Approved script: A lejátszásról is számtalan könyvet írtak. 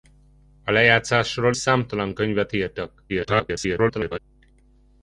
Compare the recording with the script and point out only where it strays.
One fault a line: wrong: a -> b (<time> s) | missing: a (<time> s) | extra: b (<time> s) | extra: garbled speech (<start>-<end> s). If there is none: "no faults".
missing: is (1.6 s)
extra: garbled speech (3.1-4.2 s)